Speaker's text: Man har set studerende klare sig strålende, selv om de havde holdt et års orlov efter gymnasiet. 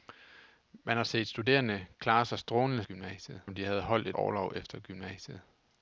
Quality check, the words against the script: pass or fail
fail